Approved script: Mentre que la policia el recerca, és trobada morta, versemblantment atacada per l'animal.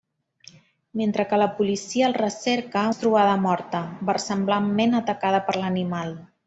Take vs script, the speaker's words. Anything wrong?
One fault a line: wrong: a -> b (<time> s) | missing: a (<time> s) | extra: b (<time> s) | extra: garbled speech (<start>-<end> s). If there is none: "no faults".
no faults